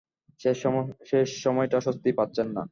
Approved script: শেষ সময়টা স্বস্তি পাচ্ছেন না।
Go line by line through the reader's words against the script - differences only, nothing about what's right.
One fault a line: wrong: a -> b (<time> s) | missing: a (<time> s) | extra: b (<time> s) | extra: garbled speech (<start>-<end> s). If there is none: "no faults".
no faults